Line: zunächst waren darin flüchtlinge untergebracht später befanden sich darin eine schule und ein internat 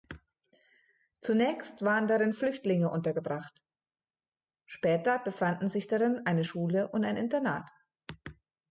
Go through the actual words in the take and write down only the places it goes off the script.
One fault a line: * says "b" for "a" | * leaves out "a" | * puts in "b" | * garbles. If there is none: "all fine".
all fine